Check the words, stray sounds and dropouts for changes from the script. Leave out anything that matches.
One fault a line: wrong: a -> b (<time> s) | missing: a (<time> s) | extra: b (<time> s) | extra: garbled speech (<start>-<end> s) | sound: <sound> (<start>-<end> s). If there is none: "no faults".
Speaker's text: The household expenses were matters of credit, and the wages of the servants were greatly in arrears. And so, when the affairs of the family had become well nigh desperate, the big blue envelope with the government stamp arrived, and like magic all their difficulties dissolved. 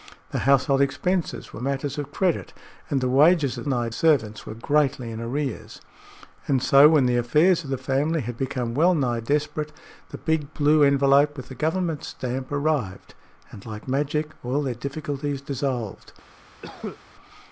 wrong: the -> nigh (3.6 s)
sound: cough (16.6-17.0 s)